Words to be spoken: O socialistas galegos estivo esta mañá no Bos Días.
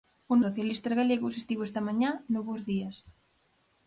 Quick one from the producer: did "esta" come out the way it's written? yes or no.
yes